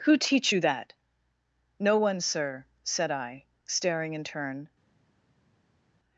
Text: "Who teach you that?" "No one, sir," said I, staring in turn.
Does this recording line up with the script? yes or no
yes